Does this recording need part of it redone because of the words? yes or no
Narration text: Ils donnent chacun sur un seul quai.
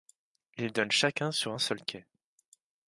no